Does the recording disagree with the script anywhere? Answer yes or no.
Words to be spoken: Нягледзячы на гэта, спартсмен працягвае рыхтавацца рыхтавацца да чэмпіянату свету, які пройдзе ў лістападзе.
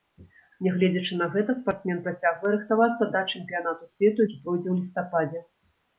yes